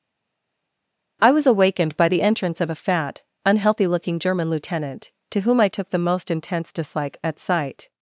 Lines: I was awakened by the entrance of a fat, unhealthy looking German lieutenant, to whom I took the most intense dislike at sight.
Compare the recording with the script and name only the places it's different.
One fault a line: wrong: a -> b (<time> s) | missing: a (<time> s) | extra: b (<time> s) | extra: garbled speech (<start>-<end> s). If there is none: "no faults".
no faults